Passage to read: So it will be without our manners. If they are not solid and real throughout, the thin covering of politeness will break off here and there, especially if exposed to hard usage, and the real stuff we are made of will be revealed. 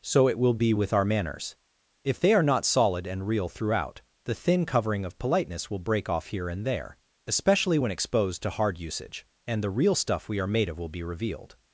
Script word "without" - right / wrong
wrong